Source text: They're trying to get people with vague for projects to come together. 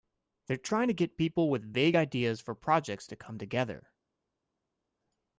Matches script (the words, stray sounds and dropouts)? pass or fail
fail